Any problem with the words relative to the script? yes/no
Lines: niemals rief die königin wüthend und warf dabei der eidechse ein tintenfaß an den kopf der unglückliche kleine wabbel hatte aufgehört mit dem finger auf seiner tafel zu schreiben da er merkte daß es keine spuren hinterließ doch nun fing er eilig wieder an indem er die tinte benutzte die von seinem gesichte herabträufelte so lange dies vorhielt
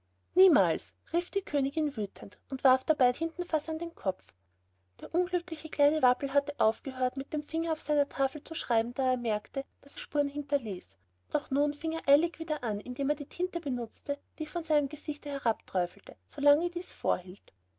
yes